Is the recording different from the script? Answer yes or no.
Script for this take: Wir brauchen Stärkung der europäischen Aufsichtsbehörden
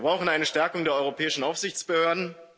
yes